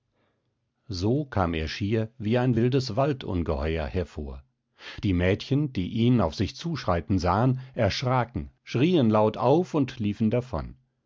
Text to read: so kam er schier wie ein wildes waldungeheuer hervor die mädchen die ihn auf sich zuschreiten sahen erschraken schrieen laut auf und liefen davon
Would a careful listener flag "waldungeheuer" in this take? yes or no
no